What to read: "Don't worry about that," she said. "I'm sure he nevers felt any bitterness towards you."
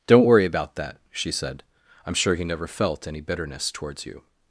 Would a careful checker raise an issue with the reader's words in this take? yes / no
yes